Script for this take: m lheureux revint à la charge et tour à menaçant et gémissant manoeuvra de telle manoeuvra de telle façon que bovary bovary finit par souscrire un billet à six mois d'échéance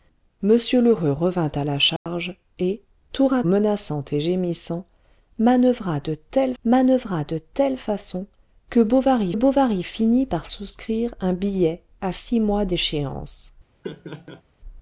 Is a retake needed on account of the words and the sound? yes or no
yes